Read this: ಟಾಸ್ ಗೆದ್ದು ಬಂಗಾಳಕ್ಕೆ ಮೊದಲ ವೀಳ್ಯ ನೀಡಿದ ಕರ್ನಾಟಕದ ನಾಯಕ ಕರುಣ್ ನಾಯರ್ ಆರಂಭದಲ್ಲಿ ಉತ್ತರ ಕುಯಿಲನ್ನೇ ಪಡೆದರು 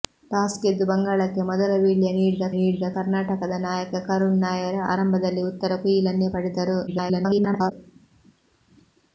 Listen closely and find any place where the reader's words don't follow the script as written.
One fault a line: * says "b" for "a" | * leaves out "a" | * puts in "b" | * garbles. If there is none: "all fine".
* puts in "ನೀಡಿದ"
* garbles